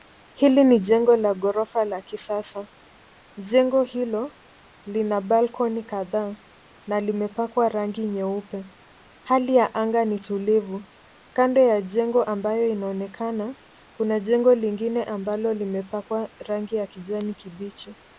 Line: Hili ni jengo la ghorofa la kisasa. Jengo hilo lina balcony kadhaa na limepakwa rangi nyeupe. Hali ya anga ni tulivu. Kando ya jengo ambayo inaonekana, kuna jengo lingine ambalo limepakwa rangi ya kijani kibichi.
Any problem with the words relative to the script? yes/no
no